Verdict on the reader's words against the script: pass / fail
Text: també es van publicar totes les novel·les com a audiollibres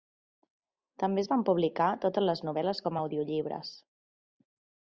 pass